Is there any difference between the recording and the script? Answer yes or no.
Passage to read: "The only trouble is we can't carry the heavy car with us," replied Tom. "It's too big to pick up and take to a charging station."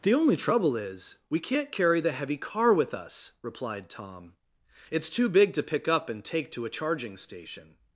no